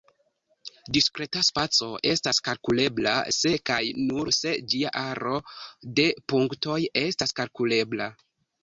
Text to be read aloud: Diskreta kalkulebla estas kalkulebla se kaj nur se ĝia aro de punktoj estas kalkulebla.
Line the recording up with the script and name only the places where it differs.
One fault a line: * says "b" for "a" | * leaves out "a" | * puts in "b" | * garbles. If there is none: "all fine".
* says "spaco" for "kalkulebla"